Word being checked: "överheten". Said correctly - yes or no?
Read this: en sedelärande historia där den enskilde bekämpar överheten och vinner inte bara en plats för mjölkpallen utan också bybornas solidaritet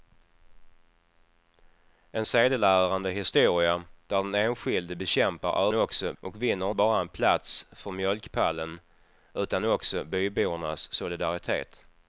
no